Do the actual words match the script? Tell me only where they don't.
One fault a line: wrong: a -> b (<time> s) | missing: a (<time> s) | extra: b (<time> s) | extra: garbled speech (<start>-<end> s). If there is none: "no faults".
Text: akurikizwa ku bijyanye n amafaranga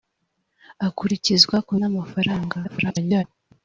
missing: bijyanye (1.7 s)
extra: garbled speech (2.6-3.2 s)